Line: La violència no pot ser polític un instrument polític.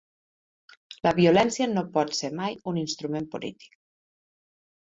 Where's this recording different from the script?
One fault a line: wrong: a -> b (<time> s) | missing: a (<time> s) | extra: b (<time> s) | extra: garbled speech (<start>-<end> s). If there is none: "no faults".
wrong: polític -> mai (2.4 s)